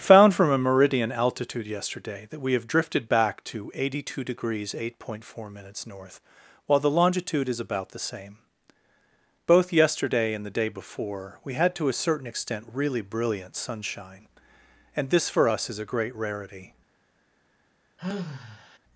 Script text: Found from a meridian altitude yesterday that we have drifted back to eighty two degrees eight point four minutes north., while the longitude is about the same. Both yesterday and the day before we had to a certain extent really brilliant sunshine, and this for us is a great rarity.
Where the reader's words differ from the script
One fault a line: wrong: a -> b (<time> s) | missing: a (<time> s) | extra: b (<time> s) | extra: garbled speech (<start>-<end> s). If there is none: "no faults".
no faults